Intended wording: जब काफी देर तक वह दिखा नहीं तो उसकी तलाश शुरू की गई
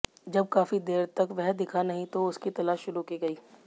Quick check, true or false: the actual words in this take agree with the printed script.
true